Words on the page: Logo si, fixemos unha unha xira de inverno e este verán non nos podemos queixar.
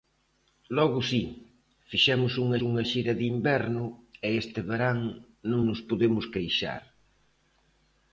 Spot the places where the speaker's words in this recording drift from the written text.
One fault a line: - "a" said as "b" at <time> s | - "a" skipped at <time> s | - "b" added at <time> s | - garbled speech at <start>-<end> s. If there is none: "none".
none